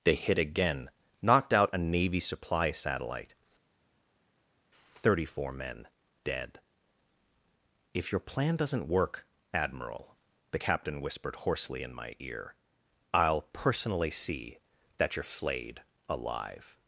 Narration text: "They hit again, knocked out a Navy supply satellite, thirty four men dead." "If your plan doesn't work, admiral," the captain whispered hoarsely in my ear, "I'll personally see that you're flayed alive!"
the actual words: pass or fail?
pass